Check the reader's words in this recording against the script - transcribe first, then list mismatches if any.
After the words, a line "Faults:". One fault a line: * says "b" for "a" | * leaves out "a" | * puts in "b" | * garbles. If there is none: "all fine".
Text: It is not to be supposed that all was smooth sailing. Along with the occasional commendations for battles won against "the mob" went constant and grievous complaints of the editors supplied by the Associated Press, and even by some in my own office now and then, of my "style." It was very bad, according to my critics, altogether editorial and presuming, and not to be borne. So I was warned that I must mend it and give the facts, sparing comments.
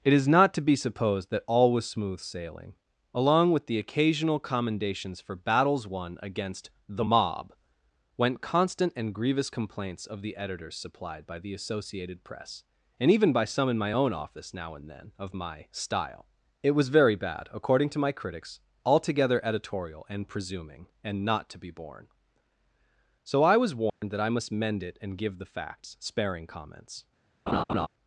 It is not to be supposed that all was smooth sailing. Along with the occasional commendations for battles won against "the mob" went constant and grievous complaints of the editors supplied by the Associated Press, and even by some in my own office now and then, of my "style." It was very bad, according to my critics, altogether editorial and presuming, and not to be borne. So I was warned that I must mend it and give the facts, sparing comments.
Faults:
all fine